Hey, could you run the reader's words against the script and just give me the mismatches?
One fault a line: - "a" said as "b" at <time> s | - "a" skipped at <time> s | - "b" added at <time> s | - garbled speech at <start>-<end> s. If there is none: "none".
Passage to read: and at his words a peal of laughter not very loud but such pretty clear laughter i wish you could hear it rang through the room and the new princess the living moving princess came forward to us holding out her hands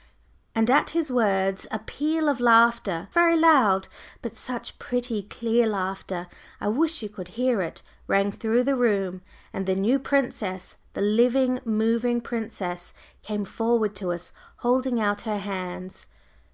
- "not" skipped at 3.1 s